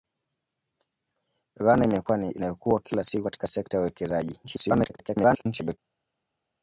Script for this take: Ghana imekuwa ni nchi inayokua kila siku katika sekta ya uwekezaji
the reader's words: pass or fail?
fail